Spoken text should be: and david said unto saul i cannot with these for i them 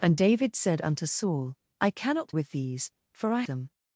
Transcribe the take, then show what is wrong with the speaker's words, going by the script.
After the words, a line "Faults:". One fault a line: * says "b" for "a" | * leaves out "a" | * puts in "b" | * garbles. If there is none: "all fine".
and david said unto saul i cannot with these for i them
Faults:
all fine